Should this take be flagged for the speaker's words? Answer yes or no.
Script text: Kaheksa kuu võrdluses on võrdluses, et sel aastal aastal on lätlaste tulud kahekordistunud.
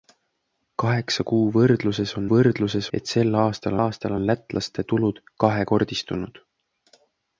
no